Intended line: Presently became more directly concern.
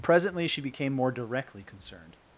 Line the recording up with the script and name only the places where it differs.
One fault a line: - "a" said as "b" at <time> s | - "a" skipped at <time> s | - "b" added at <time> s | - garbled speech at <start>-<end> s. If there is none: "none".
- "she" added at 0.4 s
- "concern" said as "concerned" at 1.6 s